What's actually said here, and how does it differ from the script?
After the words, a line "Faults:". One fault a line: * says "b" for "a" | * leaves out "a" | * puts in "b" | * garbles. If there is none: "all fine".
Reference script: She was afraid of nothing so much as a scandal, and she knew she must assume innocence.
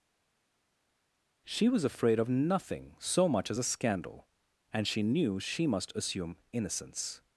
She was afraid of nothing so much as a scandal, and she knew she must assume innocence.
Faults:
all fine